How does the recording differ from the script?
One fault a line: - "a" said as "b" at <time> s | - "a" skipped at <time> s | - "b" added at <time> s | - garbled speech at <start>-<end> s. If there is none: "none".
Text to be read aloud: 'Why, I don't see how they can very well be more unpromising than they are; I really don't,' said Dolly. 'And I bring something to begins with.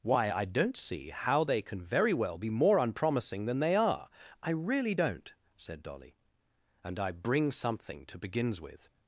none